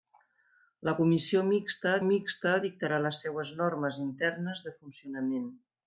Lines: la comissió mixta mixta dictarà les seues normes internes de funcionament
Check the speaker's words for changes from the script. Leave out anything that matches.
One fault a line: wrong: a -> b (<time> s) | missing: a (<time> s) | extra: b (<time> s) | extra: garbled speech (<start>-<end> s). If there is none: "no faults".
no faults